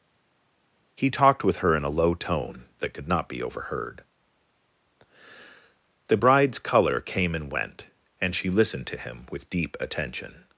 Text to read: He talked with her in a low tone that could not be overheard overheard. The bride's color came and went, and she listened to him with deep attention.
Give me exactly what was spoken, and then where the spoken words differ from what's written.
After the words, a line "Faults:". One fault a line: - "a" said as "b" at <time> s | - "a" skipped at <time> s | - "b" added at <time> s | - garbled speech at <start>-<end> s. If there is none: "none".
He talked with her in a low tone that could not be overheard. The bride's color came and went, and she listened to him with deep attention.
Faults:
- "overheard" skipped at 4.0 s